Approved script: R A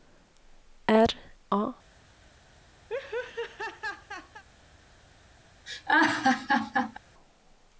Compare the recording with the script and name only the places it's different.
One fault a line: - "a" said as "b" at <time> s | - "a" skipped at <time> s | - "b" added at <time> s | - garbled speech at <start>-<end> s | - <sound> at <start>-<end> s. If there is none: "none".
- laugh at 2.9-4.4 s
- laugh at 5.7-7.0 s